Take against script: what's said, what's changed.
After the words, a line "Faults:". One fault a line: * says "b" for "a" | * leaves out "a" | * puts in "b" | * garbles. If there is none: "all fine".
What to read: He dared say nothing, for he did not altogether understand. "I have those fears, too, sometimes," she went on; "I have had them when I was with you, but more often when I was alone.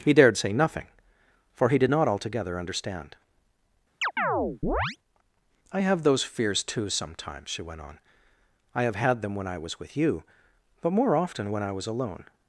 He dared say nothing, for he did not altogether understand. "I have those fears, too, sometimes," she went on; "I have had them when I was with you, but more often when I was alone.
Faults:
all fine